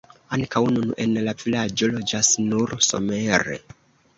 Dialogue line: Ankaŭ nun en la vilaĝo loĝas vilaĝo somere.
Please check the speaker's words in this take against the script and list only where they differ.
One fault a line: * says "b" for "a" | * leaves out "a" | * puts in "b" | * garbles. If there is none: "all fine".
* says "nur" for "vilaĝo"